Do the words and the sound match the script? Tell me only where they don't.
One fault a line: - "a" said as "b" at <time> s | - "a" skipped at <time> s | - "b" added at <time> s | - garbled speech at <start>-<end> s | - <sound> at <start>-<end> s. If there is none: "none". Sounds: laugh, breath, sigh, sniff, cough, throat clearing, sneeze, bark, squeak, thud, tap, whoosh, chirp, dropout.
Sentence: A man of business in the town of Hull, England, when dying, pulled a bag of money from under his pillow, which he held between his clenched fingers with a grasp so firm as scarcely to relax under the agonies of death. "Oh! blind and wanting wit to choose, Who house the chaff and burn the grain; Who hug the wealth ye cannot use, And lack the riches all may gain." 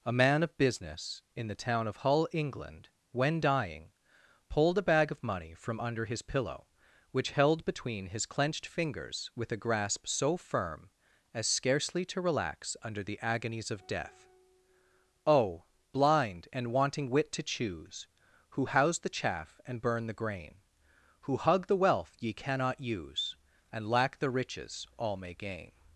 - "he" skipped at 7.3 s